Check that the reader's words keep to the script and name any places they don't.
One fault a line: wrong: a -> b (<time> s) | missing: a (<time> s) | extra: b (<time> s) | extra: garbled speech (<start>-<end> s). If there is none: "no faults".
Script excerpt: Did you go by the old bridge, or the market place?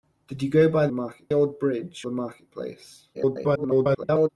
wrong: the -> market (0.9 s)
missing: or (2.1 s)
extra: garbled speech (3.1-4.3 s)